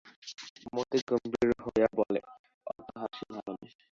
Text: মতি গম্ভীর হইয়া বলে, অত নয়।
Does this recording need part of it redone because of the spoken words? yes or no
yes